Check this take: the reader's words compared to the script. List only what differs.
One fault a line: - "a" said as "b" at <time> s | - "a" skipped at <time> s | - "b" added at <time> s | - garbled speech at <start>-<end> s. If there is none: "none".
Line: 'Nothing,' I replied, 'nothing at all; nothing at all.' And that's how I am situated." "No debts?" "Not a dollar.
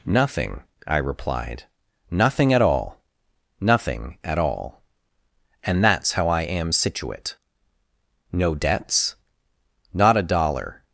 - "situated" said as "situate" at 6.7 s